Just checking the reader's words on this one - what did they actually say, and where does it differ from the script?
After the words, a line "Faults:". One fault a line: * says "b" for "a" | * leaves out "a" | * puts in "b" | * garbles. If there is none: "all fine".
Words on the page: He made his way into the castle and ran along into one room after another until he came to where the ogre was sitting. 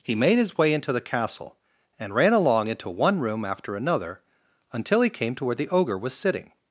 He made his way into the castle and ran along into one room after another until he came to where the ogre was sitting.
Faults:
all fine